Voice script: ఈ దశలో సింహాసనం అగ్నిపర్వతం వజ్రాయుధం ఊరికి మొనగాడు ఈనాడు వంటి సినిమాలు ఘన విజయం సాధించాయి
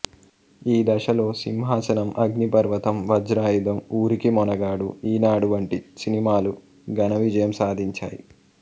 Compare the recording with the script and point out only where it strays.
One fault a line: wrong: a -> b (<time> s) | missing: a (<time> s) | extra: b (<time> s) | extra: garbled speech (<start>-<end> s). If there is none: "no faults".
no faults